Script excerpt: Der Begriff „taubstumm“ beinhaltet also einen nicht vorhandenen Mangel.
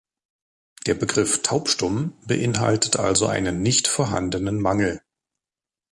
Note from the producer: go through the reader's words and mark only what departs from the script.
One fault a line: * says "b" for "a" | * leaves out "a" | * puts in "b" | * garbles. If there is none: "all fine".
all fine